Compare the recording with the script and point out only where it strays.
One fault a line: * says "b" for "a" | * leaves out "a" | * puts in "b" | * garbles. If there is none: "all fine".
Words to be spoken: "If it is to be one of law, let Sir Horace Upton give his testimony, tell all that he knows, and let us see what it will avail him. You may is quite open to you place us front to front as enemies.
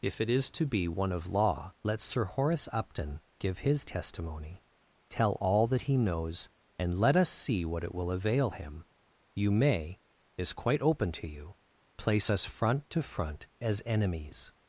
all fine